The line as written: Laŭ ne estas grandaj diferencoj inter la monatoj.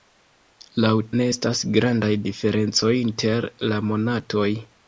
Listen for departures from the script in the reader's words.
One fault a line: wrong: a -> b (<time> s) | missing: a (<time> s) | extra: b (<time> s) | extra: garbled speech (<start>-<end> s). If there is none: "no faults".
no faults